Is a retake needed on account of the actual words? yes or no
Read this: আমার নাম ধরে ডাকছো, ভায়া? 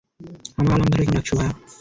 no